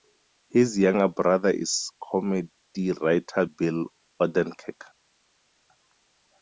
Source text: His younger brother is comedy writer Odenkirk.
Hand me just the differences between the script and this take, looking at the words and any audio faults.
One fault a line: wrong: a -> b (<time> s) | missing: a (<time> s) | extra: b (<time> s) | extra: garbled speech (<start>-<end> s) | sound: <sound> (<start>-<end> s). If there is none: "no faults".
extra: Bill (3.4 s)